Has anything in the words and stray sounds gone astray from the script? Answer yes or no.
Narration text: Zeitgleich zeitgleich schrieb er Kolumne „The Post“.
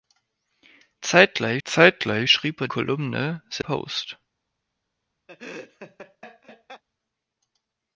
yes